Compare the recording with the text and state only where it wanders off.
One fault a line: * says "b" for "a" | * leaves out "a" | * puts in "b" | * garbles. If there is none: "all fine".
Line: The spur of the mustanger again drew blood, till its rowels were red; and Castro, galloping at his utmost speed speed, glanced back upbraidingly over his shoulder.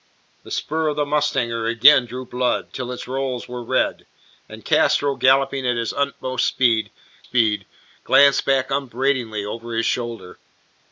all fine